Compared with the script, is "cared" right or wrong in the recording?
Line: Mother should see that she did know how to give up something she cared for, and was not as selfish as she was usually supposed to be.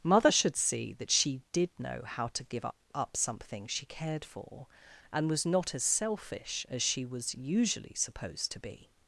right